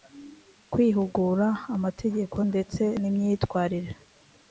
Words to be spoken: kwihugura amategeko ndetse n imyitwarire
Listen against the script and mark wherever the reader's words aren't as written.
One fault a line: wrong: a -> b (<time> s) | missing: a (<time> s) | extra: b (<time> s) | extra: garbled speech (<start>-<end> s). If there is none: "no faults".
no faults